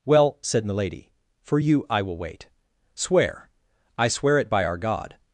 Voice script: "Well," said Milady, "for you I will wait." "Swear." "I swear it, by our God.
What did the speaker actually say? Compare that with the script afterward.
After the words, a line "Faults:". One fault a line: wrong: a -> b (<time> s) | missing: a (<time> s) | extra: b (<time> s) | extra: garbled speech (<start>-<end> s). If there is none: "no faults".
"Well," said Milady, "for you I will wait." "Swear." "I swear it, by our God.
Faults:
no faults